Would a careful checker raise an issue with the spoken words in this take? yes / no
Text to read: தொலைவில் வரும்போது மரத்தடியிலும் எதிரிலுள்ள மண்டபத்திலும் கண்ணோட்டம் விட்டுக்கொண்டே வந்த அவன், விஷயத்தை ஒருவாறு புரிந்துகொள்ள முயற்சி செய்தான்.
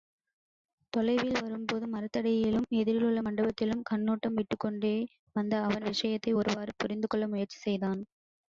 no